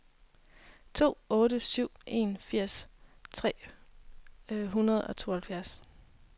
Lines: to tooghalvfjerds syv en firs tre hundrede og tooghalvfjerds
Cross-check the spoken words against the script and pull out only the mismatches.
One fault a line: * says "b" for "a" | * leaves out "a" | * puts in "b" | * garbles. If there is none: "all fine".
* says "otte" for "tooghalvfjerds"